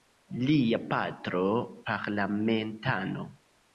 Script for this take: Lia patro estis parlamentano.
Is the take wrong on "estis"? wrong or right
wrong